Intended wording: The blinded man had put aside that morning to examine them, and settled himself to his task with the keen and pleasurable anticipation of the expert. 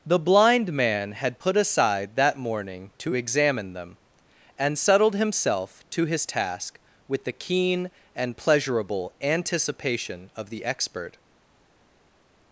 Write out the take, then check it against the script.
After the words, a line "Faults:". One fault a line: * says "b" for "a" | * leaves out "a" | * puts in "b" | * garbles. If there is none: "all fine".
The blind man had put aside that morning to examine them, and settled himself to his task with the keen and pleasurable anticipation of the expert.
Faults:
* says "blind" for "blinded"